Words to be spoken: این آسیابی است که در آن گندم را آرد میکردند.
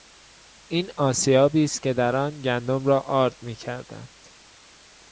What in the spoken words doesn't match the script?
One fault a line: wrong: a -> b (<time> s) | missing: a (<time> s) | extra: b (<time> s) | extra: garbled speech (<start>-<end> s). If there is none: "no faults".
no faults